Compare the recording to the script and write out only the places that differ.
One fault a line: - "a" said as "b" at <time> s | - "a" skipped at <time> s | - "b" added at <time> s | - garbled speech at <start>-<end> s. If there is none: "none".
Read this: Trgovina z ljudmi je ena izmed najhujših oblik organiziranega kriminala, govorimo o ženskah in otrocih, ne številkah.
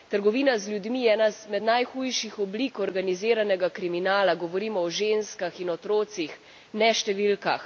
none